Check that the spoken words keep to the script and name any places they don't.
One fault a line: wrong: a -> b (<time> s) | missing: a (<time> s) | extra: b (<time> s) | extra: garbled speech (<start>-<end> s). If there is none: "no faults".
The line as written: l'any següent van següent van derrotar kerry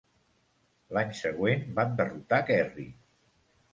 missing: següent van (1.9 s)